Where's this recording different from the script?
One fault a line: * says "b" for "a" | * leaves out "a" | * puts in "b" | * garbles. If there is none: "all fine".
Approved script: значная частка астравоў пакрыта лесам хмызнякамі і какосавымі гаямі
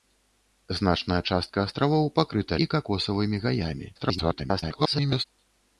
* leaves out "лесам хмызнякамі"
* garbles